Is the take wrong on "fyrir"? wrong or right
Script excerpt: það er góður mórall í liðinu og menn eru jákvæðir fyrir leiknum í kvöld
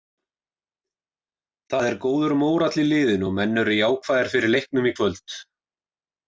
right